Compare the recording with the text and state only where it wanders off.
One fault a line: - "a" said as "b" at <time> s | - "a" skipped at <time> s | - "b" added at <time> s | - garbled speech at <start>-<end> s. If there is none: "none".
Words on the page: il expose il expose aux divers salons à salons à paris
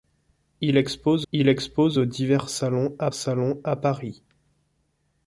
none